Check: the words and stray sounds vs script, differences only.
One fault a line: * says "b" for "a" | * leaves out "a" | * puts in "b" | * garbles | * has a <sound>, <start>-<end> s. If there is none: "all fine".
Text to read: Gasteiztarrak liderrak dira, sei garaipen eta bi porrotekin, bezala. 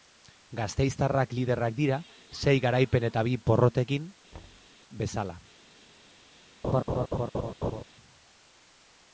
* has a thud, 4.3-4.7 s
* has a laugh, 6.6-7.8 s